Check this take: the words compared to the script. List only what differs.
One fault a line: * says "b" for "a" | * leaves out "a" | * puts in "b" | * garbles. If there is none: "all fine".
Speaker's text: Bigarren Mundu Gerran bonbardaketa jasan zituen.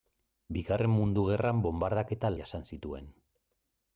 all fine